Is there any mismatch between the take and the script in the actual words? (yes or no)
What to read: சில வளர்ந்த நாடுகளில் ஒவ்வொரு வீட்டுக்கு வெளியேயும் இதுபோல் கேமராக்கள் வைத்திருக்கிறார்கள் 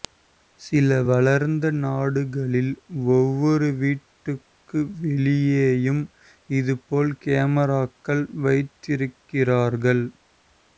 no